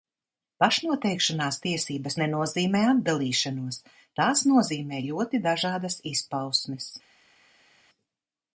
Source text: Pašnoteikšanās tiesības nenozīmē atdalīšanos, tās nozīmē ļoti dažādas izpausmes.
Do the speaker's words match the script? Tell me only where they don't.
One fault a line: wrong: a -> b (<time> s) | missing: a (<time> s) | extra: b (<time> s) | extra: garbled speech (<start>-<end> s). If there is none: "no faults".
no faults